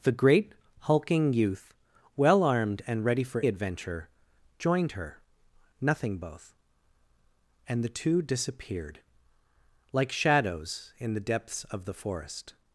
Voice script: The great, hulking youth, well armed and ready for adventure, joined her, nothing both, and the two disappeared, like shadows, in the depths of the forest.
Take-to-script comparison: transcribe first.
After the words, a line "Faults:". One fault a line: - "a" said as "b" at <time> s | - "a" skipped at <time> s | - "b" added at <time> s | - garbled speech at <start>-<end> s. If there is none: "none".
The great, hulking youth, well armed and ready for adventure, joined her, nothing both, and the two disappeared, like shadows, in the depths of the forest.
Faults:
none